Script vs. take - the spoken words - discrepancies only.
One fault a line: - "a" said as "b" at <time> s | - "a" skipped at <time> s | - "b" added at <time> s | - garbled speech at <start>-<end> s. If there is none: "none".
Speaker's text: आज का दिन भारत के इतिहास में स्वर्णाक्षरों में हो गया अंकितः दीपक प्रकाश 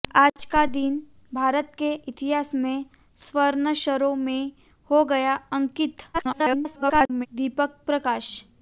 - garbled speech at 6.1-7.3 s